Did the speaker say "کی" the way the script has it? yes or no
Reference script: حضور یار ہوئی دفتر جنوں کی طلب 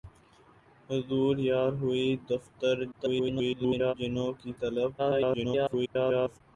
yes